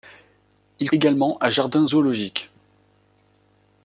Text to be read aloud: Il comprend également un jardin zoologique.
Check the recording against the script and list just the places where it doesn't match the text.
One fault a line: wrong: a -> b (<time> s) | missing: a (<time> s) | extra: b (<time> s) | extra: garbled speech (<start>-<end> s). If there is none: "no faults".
missing: comprend (0.9 s)